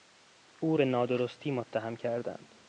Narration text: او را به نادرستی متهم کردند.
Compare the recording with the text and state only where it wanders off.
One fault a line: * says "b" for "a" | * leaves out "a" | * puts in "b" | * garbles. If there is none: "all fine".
* leaves out "را"